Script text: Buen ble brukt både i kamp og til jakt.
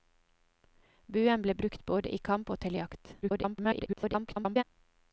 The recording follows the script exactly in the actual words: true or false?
false